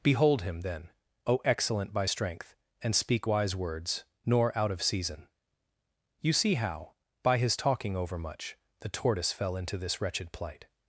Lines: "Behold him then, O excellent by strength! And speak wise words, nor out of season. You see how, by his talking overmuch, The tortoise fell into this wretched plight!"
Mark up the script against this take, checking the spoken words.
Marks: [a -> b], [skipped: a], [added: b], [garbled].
"Behold him then, O excellent by strength! And speak wise words, nor out of season. You see how, by his talking overmuch, The tortoise fell into this wretched plight!"